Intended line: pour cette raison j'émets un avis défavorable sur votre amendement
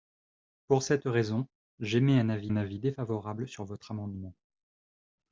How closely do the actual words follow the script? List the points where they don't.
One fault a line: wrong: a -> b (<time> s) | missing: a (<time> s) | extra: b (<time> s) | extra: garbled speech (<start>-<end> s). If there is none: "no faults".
extra: un avis (2.5 s)